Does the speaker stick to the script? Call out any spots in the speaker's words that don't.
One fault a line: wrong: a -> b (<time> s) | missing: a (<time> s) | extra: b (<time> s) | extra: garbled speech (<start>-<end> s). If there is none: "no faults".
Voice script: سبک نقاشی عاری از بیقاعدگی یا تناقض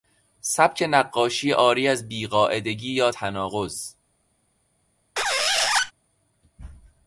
no faults